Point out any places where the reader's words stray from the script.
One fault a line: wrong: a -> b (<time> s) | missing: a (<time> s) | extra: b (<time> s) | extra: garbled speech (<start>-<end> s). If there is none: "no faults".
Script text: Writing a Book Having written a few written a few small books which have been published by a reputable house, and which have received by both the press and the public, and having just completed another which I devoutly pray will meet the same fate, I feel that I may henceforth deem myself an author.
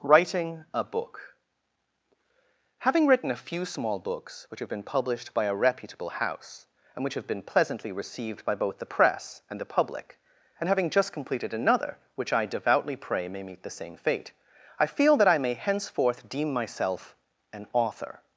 missing: written a few (3.6 s)
extra: been pleasantly (7.3 s)
wrong: will -> may (13.3 s)